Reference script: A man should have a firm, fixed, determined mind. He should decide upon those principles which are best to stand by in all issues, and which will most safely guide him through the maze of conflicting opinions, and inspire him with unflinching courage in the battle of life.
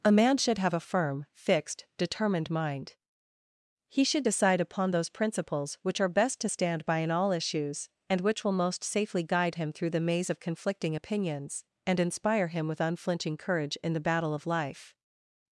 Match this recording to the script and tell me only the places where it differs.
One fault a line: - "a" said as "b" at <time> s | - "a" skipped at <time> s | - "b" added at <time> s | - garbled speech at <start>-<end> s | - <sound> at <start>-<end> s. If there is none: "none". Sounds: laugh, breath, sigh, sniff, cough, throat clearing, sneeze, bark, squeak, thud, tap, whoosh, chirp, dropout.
none